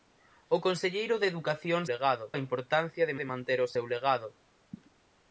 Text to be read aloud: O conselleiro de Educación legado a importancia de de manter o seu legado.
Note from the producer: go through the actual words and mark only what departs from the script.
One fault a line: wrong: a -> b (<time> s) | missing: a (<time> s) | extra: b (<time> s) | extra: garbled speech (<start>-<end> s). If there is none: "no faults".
no faults